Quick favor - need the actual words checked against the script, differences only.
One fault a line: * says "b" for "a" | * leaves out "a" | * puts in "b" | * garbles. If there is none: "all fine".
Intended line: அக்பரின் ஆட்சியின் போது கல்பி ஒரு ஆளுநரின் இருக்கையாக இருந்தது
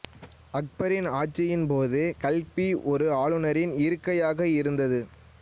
all fine